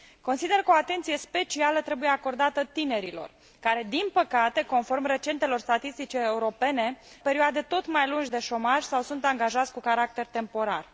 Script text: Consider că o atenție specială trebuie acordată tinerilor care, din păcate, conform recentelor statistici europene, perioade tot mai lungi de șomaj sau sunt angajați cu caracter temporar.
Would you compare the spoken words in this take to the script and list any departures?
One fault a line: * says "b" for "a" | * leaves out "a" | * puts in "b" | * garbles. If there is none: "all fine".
all fine